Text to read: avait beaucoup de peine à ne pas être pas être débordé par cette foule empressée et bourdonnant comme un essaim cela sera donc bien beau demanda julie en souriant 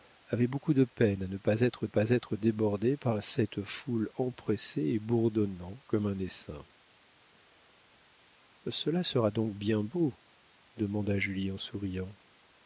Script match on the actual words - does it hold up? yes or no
yes